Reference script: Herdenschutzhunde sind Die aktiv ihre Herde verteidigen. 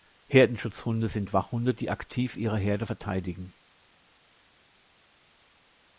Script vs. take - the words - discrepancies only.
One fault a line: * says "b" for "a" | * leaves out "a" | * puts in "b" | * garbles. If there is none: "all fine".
* puts in "Wachhunde"